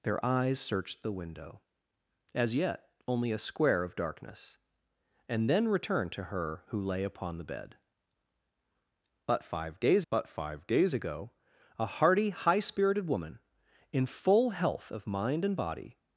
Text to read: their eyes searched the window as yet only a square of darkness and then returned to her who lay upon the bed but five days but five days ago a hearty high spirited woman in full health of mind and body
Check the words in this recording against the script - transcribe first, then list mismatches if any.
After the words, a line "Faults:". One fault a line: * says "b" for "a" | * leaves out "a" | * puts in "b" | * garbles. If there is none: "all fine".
their eyes searched the window as yet only a square of darkness and then returned to her who lay upon the bed but five days but five days ago a hearty high spirited woman in full health of mind and body
Faults:
all fine